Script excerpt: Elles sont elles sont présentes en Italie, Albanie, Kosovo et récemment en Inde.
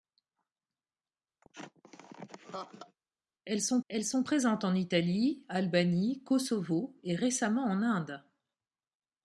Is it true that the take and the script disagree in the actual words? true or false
false